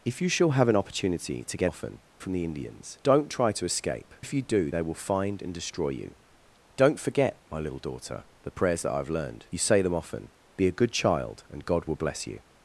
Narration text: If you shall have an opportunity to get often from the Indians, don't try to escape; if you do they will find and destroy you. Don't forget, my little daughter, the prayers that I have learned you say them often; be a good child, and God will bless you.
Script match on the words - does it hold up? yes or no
yes